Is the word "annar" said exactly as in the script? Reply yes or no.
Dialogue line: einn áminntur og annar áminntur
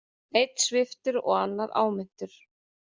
yes